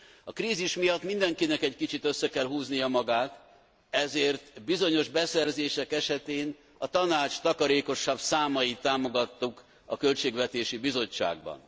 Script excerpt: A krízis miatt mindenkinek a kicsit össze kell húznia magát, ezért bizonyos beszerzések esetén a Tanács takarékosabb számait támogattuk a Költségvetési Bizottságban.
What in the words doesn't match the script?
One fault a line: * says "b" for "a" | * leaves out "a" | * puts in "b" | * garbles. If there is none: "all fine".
* says "egy" for "a"